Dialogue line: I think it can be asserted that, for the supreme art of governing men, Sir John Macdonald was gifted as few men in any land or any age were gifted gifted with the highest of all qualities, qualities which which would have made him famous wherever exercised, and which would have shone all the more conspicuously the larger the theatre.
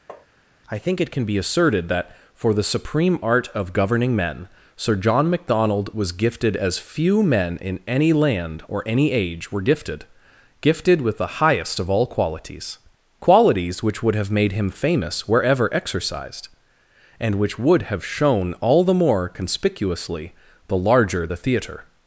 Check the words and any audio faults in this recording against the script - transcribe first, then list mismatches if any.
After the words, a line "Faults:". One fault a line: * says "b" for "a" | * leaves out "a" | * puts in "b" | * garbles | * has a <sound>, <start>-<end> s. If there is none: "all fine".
I think it can be asserted that, for the supreme art of governing men, Sir John Macdonald was gifted as few men in any land or any age were gifted gifted with the highest of all qualities, qualities which would have made him famous wherever exercised, and which would have shone all the more conspicuously the larger the theatre.
Faults:
* has a tap, 0.1-0.3 s
* leaves out "which"